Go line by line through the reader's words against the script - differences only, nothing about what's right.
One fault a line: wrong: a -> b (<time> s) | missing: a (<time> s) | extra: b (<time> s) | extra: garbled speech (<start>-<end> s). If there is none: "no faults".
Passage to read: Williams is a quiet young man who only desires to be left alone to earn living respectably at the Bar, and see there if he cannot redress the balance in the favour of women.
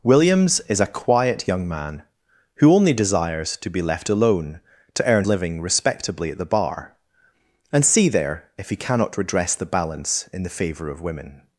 no faults